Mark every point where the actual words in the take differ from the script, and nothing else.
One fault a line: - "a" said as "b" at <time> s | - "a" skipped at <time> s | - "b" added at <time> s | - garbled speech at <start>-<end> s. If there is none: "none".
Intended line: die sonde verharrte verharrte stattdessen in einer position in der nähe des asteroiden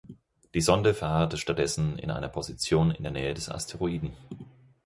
- "verharrte" skipped at 1.4 s